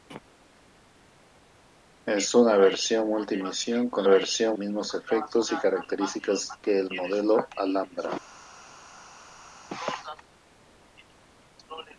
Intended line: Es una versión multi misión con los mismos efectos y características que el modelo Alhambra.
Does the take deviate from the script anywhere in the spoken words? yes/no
yes